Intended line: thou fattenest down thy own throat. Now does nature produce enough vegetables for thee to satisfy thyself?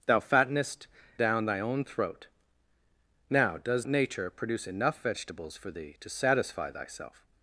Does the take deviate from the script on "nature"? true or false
false